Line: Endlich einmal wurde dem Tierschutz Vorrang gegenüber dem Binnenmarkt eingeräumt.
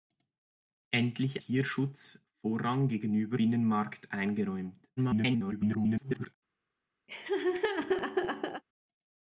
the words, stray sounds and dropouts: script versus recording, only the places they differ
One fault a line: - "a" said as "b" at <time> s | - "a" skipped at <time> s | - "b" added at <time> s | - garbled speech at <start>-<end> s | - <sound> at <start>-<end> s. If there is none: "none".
- "einmal wurde dem" skipped at 1.4 s
- "dem" skipped at 3.4 s
- garbled speech at 5.0-6.3 s
- laugh at 7.1-8.6 s